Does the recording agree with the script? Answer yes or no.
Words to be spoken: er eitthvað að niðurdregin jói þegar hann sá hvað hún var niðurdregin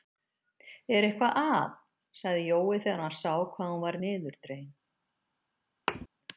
no